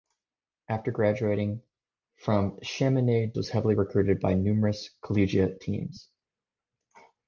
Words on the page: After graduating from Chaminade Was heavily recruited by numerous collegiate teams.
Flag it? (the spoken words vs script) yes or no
no